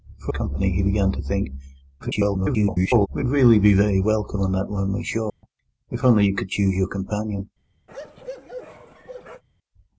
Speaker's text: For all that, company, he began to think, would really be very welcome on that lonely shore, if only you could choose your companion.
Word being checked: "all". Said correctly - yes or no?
no